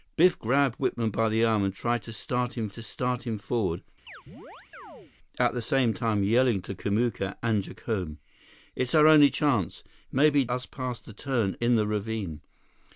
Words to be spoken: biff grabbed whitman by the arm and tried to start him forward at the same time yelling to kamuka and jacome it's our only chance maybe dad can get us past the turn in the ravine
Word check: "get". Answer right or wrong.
wrong